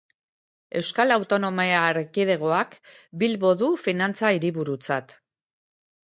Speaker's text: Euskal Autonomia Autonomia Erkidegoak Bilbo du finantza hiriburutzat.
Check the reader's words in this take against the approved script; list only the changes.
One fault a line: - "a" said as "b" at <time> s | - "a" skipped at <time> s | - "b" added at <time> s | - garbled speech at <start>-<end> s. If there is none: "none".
- "Autonomia" skipped at 1.8 s